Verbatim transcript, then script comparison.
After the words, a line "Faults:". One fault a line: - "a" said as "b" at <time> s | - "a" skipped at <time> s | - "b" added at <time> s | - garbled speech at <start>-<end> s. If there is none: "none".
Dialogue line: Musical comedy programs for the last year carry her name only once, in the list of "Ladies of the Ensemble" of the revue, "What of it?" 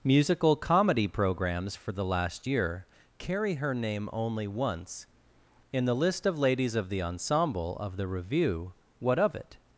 Musical comedy programs for the last year carry her name only once, in the list of "Ladies of the Ensemble" of the revue, "What of it?"
Faults:
none